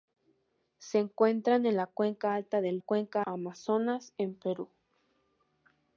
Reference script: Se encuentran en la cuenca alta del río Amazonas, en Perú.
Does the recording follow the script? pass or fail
fail